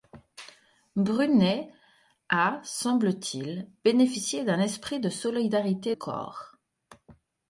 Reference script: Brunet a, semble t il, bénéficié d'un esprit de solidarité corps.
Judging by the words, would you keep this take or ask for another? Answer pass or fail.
pass